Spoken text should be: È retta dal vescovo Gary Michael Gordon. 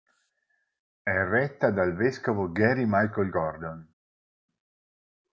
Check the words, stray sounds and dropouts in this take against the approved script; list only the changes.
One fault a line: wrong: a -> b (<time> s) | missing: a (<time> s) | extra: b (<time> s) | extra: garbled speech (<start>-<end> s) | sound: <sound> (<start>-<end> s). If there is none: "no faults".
no faults